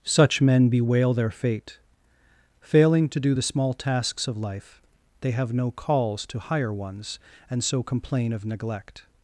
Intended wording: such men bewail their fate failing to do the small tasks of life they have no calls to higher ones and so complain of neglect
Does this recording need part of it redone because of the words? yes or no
no